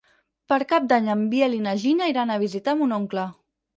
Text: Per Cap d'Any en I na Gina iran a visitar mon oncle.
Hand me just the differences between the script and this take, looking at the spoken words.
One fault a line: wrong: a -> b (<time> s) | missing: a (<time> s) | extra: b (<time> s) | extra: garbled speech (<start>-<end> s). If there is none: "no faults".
extra: Biel (1.3 s)